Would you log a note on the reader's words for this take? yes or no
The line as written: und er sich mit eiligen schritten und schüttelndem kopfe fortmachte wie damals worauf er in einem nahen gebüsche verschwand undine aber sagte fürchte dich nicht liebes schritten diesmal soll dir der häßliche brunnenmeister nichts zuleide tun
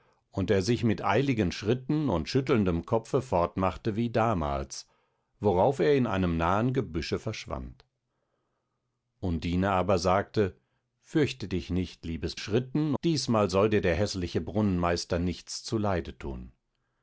no